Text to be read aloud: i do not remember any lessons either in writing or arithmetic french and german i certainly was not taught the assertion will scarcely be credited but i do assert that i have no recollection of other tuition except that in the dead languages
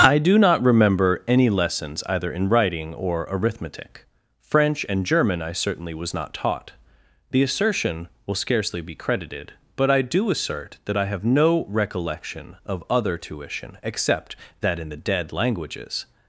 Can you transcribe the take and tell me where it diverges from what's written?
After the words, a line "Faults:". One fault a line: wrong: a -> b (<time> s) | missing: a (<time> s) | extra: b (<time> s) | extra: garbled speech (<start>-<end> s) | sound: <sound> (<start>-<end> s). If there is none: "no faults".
i do not remember any lessons either in writing or arithmetic french and german i certainly was not taught the assertion will scarcely be credited but i do assert that i have no recollection of other tuition except that in the dead languages
Faults:
no faults